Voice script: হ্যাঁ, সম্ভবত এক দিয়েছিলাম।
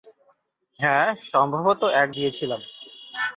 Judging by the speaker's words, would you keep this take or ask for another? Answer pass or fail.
pass